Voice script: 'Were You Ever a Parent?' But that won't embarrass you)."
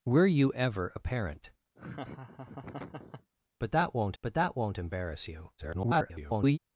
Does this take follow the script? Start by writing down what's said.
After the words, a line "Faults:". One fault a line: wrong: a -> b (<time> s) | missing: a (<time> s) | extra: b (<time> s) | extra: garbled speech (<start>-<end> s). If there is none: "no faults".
'Were You Ever a Parent?' But that won't but that won't embarrass you)." [garbled]
Faults:
extra: but that won't (4.2 s)
extra: garbled speech (5.6-6.6 s)